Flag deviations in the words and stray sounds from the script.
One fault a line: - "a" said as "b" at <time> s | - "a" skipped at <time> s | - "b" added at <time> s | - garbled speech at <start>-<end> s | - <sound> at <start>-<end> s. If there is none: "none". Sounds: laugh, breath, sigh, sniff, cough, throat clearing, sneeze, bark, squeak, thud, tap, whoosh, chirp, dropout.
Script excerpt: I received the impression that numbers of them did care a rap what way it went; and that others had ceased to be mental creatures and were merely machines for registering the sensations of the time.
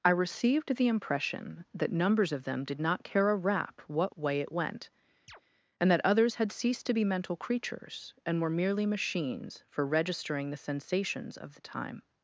- "not" added at 2.8 s
- chirp at 5.3-5.4 s